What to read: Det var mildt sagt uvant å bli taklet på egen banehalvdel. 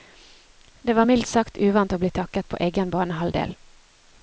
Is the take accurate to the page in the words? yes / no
yes